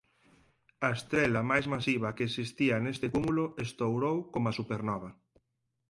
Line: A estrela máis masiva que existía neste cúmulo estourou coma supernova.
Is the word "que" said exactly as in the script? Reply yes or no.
yes